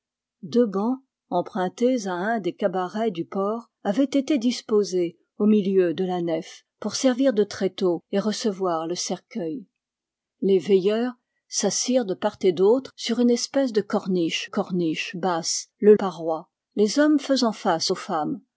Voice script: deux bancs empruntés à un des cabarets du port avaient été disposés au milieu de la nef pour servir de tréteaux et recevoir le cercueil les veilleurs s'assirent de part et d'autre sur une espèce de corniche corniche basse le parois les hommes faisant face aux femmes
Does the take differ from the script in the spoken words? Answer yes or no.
no